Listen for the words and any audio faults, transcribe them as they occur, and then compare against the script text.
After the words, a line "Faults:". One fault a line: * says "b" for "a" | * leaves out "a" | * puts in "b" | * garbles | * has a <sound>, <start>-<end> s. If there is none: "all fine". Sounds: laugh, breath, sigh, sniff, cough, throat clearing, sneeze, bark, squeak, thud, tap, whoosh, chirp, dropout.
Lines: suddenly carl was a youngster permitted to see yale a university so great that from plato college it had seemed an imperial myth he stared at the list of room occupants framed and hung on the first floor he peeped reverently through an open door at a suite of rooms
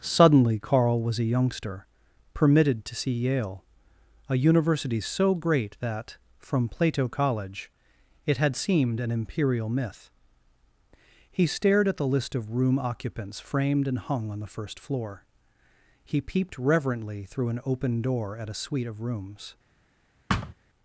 suddenly carl was a youngster permitted to see yale a university so great that from plato college it had seemed an imperial myth he stared at the list of room occupants framed and hung on the first floor he peeped reverently through an open door at a suite of rooms
Faults:
* has a thud, 20.3-20.5 s